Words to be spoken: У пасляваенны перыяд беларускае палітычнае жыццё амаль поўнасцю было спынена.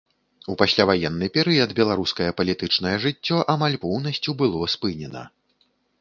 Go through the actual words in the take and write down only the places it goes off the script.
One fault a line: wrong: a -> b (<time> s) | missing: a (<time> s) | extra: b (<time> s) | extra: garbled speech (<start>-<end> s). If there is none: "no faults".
no faults